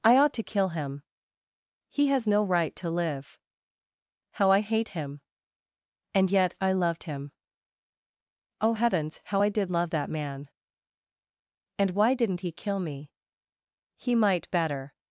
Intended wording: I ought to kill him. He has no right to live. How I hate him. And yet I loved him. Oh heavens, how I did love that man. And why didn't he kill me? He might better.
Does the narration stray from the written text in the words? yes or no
no